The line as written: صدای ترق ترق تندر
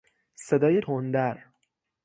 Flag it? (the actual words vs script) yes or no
yes